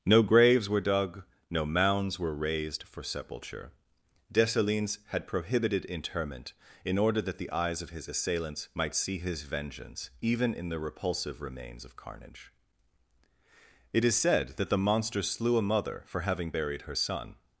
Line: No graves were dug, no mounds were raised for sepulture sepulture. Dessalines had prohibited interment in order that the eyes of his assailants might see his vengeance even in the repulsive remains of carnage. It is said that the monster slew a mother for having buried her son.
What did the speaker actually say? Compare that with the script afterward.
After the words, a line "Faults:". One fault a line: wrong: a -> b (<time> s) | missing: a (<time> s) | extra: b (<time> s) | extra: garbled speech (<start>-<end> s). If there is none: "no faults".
No graves were dug, no mounds were raised for sepulture. Dessalines had prohibited interment in order that the eyes of his assailants might see his vengeance even in the repulsive remains of carnage. It is said that the monster slew a mother for having buried her son.
Faults:
missing: sepulture (3.7 s)